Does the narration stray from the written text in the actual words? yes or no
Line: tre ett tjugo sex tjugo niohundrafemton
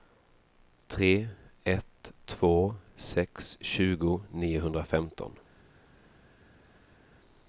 yes